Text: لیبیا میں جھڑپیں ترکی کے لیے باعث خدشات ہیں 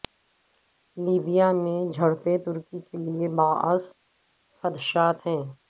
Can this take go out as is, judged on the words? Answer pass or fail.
pass